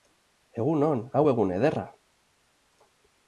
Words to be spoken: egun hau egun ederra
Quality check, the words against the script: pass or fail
fail